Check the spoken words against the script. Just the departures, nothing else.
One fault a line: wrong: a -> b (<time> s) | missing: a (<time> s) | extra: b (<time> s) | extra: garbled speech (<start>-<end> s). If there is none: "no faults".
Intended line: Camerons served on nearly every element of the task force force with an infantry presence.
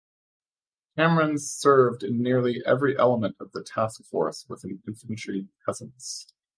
wrong: on -> in (2.0 s)
missing: force (4.5 s)